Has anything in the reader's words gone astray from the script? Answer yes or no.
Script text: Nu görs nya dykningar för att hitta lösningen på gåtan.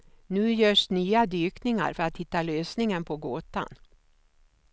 no